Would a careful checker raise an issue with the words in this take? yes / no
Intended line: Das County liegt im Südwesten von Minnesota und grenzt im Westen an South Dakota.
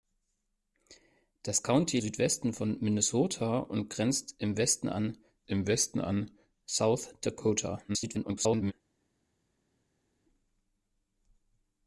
yes